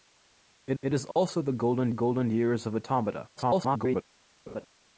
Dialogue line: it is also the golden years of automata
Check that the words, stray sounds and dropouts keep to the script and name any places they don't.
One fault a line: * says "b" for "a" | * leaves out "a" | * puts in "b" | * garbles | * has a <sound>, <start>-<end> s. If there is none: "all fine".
* puts in "it"
* has a dropout, 1.1-1.2 s
* puts in "golden"
* garbles
* has a laugh, 4.5-4.7 s